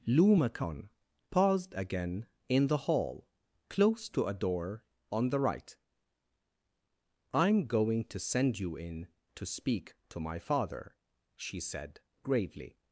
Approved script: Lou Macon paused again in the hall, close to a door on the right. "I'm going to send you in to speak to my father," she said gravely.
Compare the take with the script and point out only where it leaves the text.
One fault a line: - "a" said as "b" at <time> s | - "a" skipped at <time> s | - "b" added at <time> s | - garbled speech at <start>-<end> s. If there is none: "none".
none